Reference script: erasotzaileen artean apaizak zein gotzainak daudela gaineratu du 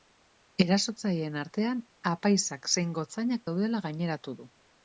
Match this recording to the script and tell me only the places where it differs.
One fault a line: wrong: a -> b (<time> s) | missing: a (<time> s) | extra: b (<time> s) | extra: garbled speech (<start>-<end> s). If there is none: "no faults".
no faults